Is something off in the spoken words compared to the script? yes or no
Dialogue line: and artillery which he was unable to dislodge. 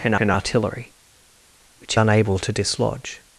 yes